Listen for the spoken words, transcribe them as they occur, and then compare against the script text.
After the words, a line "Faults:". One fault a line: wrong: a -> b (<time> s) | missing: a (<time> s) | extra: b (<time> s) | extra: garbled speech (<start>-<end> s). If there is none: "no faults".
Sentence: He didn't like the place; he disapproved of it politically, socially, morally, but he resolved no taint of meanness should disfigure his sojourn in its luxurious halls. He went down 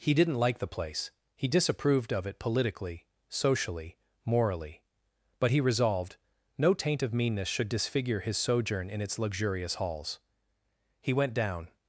He didn't like the place; he disapproved of it politically, socially, morally, but he resolved no taint of meanness should disfigure his sojourn in its luxurious halls. He went down
Faults:
no faults